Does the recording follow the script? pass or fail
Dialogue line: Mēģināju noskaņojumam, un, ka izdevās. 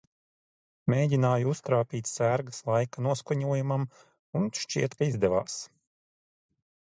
fail